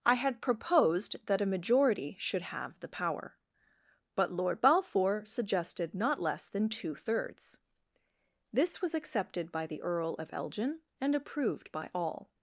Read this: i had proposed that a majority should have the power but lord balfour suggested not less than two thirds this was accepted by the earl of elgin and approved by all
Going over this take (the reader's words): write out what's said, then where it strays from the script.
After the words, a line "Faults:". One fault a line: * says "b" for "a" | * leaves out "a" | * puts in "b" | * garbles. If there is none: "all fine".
i had proposed that a majority should have the power but lord balfour suggested not less than two thirds this was accepted by the earl of elgin and approved by all
Faults:
all fine